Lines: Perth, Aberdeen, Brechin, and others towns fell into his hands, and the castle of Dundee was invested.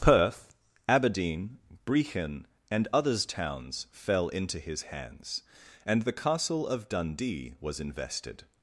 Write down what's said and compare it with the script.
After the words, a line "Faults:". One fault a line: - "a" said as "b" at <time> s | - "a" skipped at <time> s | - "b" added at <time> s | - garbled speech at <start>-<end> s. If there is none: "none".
Perth, Aberdeen, Brechin, and others towns fell into his hands, and the castle of Dundee was invested.
Faults:
none